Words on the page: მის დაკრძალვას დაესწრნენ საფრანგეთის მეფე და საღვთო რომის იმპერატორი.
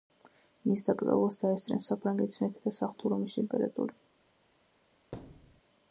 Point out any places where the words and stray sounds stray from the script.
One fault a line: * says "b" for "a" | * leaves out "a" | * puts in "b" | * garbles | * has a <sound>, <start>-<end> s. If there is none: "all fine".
* has a thud, 5.1-5.6 s